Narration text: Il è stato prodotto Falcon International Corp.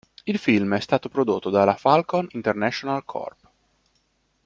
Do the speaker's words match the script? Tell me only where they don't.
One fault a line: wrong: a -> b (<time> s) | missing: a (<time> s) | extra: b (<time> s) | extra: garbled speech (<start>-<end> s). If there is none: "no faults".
extra: film (0.4 s)
extra: dalla (1.5 s)